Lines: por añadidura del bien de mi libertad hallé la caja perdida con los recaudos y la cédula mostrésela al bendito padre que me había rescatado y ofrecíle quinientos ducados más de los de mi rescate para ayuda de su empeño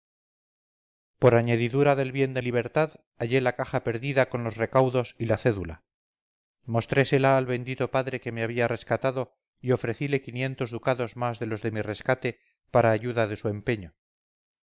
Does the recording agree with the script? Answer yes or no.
no